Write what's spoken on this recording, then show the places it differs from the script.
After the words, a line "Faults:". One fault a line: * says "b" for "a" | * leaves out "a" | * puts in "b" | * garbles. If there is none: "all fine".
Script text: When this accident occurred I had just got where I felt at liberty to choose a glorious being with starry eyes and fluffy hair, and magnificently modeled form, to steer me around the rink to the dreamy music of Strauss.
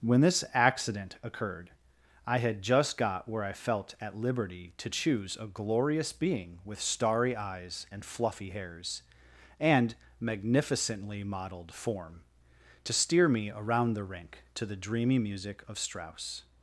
When this accident occurred I had just got where I felt at liberty to choose a glorious being with starry eyes and fluffy hairs, and magnificently modeled form, to steer me around the rink to the dreamy music of Strauss.
Faults:
* says "hairs" for "hair"